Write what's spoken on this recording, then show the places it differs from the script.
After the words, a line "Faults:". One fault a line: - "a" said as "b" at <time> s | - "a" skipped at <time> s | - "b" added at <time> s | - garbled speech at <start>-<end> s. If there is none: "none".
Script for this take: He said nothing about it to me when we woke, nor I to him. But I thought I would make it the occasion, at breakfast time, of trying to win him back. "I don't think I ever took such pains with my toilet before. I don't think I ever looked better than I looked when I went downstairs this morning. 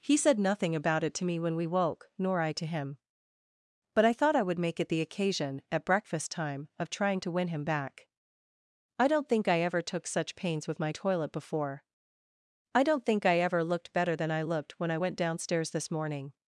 He said nothing about it to me when we woke, nor I to him. But I thought I would make it the occasion, at breakfast time, of trying to win him back. "I don't think I ever took such pains with my toilet before. I don't think I ever looked better than I looked when I went downstairs this morning.
Faults:
none